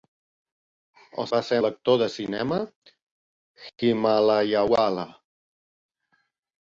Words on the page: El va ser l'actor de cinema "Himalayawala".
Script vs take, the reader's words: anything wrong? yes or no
no